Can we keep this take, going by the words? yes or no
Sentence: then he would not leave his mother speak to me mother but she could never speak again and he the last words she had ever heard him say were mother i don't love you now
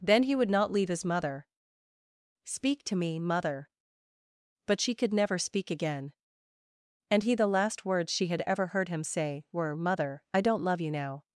yes